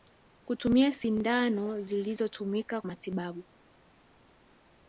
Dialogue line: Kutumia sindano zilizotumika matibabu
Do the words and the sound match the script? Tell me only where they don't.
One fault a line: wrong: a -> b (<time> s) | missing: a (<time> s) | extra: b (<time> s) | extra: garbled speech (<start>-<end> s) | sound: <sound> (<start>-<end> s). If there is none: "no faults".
no faults